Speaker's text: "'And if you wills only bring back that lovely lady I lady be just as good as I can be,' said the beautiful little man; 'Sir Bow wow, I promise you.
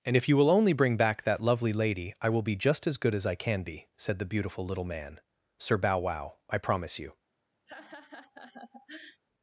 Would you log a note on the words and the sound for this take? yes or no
yes